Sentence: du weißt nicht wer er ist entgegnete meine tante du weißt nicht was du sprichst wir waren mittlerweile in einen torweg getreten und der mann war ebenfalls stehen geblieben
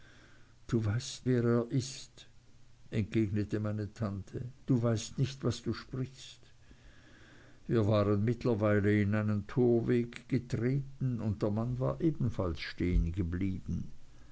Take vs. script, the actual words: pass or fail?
fail